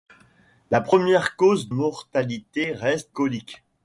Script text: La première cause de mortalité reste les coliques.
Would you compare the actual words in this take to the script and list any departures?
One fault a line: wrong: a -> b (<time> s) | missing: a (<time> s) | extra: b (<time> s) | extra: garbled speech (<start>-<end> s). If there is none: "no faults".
missing: de (1.7 s)
missing: les (3.2 s)